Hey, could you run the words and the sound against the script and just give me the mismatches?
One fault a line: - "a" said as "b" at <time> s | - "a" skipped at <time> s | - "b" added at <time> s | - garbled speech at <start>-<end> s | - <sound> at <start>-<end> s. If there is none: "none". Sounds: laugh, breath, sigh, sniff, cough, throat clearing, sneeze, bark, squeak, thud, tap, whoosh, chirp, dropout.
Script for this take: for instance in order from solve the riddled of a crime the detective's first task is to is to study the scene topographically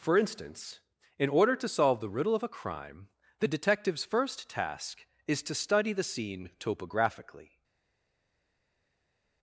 - "from" said as "to" at 1.6 s
- "riddled" said as "riddle" at 2.1 s
- "is to" skipped at 5.5 s